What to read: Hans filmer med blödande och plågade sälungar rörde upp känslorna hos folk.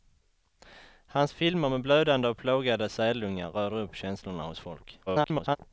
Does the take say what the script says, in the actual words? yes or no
no